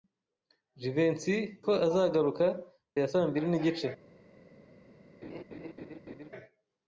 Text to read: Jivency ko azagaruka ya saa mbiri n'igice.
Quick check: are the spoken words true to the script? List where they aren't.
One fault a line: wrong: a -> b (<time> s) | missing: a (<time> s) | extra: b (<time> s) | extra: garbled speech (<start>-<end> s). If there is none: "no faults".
no faults